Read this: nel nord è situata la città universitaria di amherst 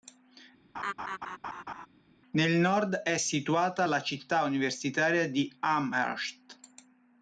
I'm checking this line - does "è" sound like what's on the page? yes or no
yes